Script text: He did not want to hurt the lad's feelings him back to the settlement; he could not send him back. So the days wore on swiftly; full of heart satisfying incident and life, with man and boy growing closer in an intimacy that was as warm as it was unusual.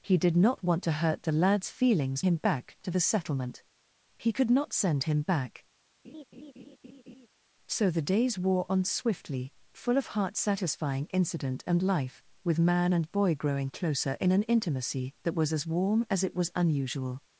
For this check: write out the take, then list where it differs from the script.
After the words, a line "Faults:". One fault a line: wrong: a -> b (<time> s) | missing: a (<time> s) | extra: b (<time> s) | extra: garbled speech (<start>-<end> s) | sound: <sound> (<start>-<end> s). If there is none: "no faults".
He did not want to hurt the lad's feelings him back to the settlement; he could not send him back. So the days wore on swiftly; full of heart satisfying incident and life, with man and boy growing closer in an intimacy that was as warm as it was unusual.
Faults:
sound: laugh (6.0-7.3 s)